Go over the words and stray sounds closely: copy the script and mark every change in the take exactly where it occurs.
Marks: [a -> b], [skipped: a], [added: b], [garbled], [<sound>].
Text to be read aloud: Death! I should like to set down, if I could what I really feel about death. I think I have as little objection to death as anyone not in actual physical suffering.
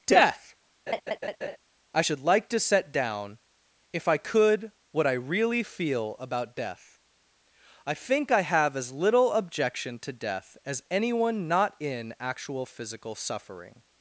Death! [laugh] I should like to set down, if I could what I really feel about death. I think I have as little objection to death as anyone not in actual physical suffering.